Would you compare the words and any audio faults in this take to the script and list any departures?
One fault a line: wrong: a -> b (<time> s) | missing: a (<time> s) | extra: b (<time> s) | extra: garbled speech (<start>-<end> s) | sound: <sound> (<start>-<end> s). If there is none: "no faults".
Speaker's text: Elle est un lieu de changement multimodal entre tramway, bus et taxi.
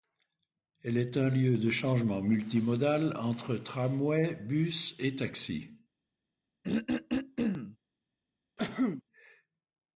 sound: throat clearing (6.6-7.8 s)
sound: cough (8.6-9.0 s)